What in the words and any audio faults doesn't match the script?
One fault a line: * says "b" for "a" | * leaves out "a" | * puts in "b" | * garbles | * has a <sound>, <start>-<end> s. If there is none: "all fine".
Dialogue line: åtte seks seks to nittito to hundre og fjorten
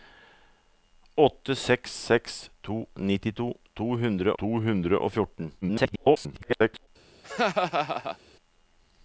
* puts in "to hundre"
* garbles
* has a laugh, 7.2-8.2 s